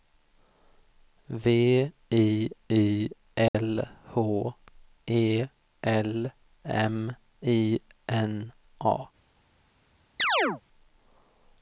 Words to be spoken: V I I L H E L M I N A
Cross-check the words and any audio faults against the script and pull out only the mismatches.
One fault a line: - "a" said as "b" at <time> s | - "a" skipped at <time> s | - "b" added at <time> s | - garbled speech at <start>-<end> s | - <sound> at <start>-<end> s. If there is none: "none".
- dropout at 3.5-3.5 s
- chirp at 10.2-10.6 s